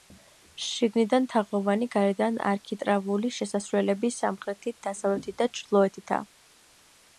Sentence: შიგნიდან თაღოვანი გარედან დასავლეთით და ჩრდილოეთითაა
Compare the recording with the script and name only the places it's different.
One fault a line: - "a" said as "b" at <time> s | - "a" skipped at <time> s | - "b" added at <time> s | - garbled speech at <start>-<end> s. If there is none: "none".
- "არქიტრავული შესასვლელები სამხრეთით" added at 2.5 s